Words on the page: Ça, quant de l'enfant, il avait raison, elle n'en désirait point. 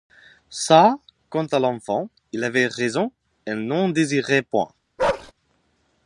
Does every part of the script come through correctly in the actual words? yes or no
no